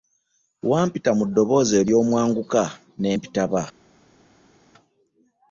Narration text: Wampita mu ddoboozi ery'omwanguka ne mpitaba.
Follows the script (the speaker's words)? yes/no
yes